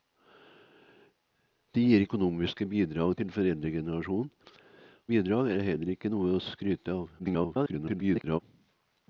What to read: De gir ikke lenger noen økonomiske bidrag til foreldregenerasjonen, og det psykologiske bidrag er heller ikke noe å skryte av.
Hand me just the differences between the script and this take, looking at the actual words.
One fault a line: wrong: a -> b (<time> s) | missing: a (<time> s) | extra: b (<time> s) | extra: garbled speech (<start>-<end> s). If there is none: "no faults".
missing: ikke lenger noen (2.0 s)
missing: og det psykologiske (4.3 s)
extra: garbled speech (7.2-8.4 s)